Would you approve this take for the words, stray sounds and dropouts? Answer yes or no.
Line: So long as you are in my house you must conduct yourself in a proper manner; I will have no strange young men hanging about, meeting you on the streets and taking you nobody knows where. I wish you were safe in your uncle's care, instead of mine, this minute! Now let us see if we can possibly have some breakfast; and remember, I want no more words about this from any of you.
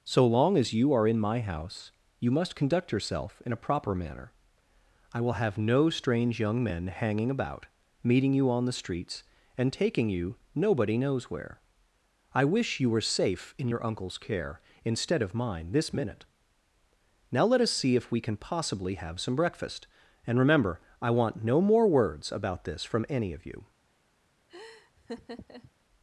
no